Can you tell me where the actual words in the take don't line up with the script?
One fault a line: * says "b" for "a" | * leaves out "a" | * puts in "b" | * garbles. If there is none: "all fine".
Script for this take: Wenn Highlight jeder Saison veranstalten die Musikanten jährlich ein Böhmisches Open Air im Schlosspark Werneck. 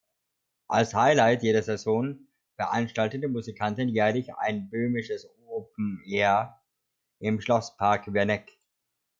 * says "Als" for "Wenn"